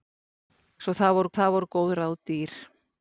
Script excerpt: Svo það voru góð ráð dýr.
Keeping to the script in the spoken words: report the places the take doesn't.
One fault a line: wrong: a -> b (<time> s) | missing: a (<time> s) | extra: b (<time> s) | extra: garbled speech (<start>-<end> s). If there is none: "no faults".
extra: það voru (1.4 s)